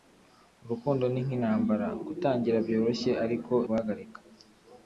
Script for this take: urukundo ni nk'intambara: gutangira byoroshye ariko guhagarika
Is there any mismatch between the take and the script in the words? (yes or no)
no